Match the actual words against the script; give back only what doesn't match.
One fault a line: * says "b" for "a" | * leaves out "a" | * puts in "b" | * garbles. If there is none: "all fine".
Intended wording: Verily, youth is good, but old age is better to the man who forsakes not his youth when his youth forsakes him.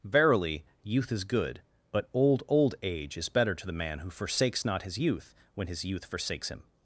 * puts in "old"